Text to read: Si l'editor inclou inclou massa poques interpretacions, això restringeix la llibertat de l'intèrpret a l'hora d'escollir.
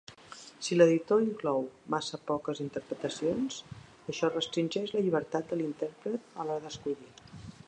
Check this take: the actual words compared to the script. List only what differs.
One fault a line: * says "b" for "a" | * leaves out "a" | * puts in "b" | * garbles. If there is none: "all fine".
* leaves out "inclou"